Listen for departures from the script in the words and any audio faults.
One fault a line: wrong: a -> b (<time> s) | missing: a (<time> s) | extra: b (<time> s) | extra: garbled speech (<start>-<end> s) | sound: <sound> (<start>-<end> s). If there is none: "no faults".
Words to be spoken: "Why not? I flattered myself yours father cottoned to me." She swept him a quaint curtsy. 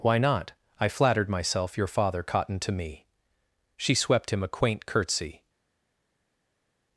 wrong: yours -> your (1.8 s)